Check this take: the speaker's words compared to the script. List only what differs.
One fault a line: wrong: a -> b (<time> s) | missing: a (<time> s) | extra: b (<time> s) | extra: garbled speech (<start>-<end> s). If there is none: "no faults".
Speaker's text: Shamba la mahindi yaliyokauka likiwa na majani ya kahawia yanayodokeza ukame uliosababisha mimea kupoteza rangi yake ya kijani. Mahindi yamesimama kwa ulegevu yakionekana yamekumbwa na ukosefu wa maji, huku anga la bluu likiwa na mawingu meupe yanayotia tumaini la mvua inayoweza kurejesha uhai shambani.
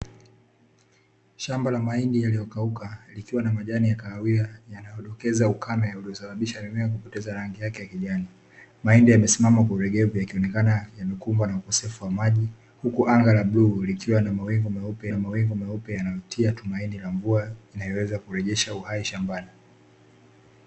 extra: na mawingu meupe (15.1 s)